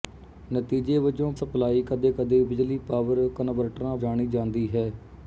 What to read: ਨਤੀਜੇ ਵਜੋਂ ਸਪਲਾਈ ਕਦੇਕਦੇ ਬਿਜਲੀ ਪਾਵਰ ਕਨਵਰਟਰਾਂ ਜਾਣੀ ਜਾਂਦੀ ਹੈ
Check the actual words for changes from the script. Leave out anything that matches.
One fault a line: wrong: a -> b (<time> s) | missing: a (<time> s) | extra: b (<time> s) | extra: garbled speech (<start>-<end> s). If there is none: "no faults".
no faults